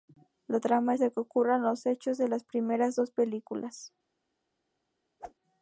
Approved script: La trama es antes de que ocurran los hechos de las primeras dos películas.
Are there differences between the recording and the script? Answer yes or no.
yes